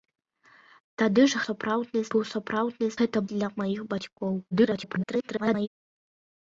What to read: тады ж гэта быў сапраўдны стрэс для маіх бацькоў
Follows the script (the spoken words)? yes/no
no